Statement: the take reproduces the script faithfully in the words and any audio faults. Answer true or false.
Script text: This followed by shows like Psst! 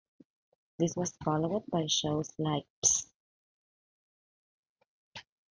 false